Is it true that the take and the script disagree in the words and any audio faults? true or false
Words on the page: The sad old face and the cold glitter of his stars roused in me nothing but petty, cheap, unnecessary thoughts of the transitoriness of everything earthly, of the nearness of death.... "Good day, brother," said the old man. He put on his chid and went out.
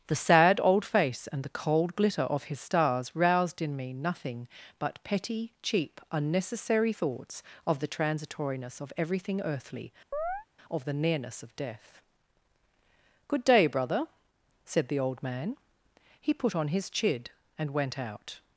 true